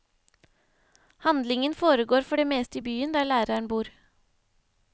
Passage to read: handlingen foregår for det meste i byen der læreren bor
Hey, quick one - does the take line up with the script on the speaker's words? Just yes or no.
yes